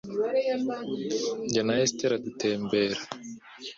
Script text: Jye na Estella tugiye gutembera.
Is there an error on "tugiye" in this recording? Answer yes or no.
yes